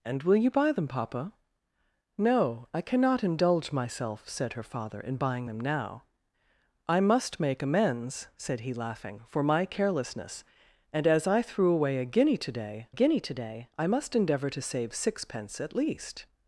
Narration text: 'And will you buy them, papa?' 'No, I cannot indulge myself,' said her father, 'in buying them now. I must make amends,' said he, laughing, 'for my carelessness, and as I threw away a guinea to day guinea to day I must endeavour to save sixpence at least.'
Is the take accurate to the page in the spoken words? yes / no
yes